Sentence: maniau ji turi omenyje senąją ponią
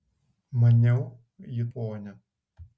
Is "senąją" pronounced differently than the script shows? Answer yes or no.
yes